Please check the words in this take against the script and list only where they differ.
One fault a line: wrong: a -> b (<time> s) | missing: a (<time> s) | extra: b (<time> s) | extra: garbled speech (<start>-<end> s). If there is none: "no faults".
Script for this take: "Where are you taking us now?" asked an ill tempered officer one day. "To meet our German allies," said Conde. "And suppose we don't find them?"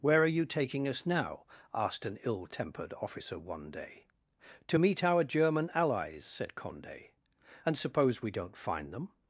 no faults